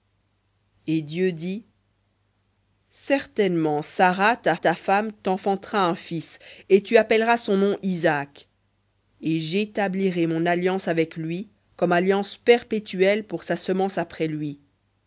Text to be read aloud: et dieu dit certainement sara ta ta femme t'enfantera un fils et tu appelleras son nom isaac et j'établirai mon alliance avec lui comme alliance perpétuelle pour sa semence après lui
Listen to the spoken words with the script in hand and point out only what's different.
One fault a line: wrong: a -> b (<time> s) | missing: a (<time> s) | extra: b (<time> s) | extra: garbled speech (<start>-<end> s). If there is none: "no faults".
no faults